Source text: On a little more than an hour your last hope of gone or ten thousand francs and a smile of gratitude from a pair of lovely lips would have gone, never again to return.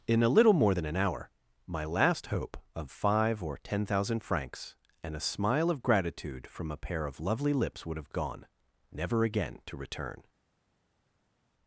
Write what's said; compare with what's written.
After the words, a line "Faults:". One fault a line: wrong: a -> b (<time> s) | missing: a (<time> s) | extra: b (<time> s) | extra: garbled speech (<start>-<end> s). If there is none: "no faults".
In a little more than an hour my last hope of five or ten thousand francs and a smile of gratitude from a pair of lovely lips would have gone, never again to return.
Faults:
wrong: On -> In (0.1 s)
wrong: your -> my (1.7 s)
wrong: gone -> five (2.9 s)